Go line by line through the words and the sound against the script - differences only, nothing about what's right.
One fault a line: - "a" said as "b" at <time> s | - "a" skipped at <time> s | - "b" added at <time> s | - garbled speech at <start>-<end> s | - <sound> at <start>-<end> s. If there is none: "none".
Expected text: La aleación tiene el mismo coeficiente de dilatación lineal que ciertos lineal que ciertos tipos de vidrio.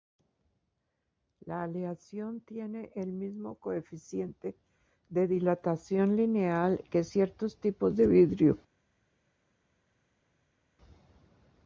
- "lineal que ciertos" skipped at 7.6 s